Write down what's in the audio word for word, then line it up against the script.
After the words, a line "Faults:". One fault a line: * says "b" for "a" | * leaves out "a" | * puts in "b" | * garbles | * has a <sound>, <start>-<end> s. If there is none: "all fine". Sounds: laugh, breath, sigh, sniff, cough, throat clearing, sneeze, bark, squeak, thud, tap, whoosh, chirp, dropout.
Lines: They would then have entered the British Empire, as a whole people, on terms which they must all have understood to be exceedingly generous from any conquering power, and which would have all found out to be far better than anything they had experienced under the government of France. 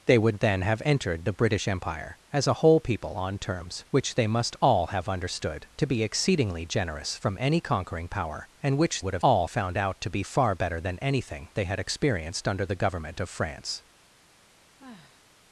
They would then have entered the British Empire, as a whole people, on terms which they must all have understood to be exceedingly generous from any conquering power, and which would have all found out to be far better than anything they had experienced under the government of France.
Faults:
* has a sigh, 14.8-15.2 s